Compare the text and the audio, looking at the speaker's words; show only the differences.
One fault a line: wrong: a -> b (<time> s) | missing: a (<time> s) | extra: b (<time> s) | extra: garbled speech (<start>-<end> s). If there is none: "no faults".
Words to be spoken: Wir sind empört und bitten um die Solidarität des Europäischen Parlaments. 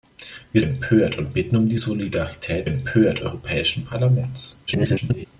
missing: sind (0.6 s)
wrong: des -> empört (2.6 s)
extra: garbled speech (4.7-5.2 s)